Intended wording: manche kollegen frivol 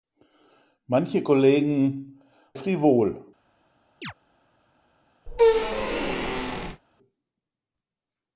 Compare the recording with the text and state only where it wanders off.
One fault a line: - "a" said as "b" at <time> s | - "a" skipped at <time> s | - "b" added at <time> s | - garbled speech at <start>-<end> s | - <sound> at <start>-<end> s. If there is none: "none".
- chirp at 4.0-4.1 s
- squeak at 5.3-6.8 s